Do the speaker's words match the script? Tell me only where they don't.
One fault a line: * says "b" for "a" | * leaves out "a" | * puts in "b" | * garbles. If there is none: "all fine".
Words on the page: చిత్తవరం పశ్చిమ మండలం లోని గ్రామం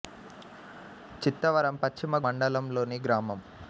all fine